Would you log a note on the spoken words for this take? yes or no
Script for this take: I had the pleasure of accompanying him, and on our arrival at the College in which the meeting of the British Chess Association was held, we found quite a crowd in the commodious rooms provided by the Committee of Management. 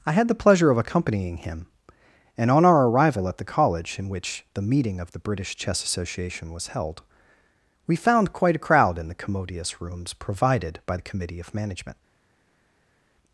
no